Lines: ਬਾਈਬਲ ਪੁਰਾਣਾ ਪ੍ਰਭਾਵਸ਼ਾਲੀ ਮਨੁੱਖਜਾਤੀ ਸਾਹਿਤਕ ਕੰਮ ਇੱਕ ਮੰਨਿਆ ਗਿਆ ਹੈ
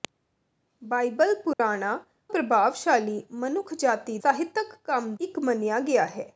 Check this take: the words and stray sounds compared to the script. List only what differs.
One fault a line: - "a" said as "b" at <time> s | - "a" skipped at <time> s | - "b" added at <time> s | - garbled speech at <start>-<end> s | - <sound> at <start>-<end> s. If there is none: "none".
- dropout at 1.5-1.6 s